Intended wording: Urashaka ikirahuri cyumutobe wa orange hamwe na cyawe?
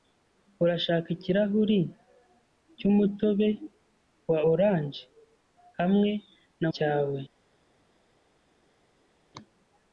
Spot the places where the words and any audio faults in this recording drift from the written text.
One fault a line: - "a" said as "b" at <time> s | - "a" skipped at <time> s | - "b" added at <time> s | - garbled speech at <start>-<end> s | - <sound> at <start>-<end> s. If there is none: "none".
none